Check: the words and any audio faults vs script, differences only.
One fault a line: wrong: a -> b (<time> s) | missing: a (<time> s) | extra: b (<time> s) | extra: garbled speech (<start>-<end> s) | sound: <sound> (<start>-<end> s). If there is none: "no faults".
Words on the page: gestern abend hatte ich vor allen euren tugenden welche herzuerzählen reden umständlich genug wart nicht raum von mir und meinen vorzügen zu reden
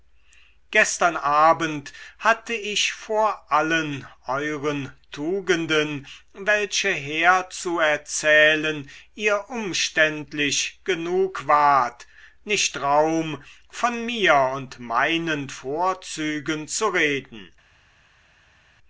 wrong: reden -> ihr (9.1 s)